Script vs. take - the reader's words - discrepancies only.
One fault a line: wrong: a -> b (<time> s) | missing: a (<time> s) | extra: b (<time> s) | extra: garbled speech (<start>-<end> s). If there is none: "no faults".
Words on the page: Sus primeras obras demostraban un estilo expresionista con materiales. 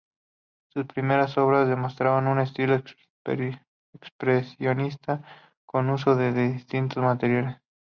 extra: uso de distintos (5.9 s)